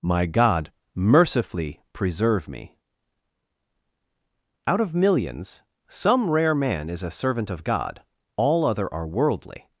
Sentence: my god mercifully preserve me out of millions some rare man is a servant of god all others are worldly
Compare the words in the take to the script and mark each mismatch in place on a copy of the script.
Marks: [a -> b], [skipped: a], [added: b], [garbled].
my god mercifully preserve me out of millions some rare man is a servant of god all [others -> other] are worldly